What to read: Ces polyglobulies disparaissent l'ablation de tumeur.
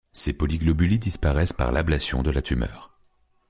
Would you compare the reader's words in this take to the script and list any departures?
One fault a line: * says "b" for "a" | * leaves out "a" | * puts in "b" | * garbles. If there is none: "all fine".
* puts in "par"
* puts in "la"